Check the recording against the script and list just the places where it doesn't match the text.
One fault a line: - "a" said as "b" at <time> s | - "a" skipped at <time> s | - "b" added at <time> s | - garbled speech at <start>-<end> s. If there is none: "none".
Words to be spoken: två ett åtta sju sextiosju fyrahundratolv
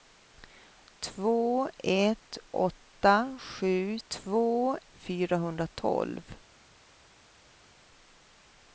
- "sextiosju" said as "två" at 4.1 s